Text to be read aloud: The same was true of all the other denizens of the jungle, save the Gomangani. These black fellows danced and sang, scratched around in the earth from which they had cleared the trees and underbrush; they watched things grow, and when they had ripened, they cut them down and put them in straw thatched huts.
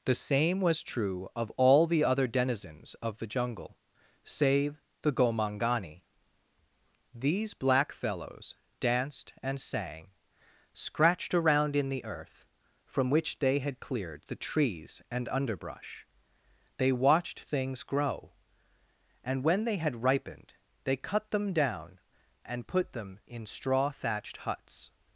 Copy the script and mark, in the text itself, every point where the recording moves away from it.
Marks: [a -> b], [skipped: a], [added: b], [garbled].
The same was true of all the other denizens of the jungle, save the Gomangani. These black fellows danced and sang, scratched around in the earth from which they had cleared the trees and underbrush; they watched things grow, and when they had ripened, they cut them down and put them in straw thatched huts.